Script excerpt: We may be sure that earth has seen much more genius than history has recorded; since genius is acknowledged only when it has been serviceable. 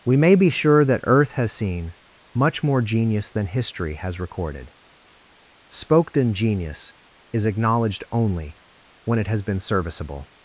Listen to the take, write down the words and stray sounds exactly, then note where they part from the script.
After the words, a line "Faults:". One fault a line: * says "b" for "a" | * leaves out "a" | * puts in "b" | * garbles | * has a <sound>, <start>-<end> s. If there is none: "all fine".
We may be sure that earth has seen much more genius than history has recorded; spoken genius is acknowledged only when it has been serviceable.
Faults:
* says "spoken" for "since"